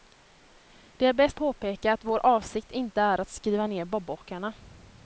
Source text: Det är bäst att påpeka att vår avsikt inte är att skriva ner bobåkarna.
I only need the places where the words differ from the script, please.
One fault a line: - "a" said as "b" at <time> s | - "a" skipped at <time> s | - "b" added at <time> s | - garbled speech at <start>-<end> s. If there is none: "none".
- "att" skipped at 1.4 s